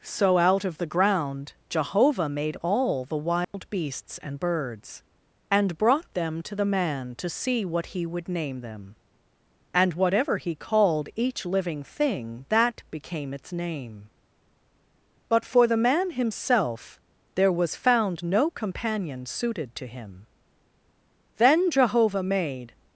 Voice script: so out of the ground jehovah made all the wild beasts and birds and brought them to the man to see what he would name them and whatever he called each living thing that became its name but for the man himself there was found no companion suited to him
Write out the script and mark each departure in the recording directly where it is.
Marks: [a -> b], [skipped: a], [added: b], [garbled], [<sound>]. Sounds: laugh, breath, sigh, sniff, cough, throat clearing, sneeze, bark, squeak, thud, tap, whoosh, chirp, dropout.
so out of the ground jehovah made all the wild [dropout] beasts and birds and brought them to the man to see what he would name them and whatever he called each living thing that became its name but for the man himself there was found no companion suited to him [added: then jehovah made]